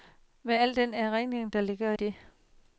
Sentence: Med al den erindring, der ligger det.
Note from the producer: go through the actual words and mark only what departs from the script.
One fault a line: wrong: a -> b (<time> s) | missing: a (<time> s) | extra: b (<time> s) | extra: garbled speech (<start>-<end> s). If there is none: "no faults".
no faults